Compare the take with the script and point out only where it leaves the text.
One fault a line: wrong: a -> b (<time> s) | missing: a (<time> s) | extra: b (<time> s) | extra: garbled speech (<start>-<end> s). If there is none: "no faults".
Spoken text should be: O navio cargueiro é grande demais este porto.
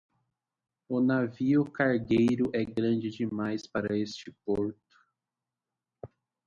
extra: para (3.7 s)